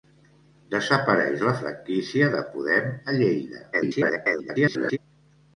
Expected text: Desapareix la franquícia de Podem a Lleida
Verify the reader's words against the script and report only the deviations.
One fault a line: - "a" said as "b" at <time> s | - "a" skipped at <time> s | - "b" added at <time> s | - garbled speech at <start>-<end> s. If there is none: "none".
- garbled speech at 3.7-5.0 s